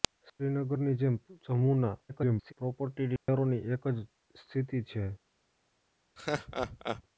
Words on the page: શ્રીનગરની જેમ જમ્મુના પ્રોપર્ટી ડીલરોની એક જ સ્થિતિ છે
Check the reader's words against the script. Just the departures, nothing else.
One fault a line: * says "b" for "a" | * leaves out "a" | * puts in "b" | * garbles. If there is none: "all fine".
* garbles